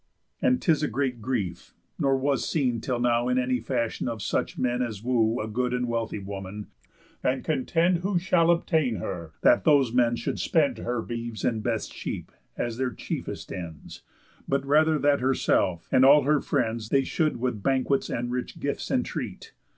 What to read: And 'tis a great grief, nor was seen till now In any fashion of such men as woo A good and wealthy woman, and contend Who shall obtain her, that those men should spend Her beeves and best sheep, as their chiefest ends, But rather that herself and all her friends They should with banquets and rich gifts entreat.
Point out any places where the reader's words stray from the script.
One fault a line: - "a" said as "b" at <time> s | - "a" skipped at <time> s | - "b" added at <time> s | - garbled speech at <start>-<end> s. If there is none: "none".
none